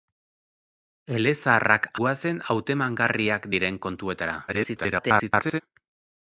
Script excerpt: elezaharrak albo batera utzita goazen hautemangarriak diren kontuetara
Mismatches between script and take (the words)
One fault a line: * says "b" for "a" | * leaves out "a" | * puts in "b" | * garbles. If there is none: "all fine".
* leaves out "albo batera utzita"
* garbles